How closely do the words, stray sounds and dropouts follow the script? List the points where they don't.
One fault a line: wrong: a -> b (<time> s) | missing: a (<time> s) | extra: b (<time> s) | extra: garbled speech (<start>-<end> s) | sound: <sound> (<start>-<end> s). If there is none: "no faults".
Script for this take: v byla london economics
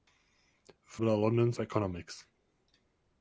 no faults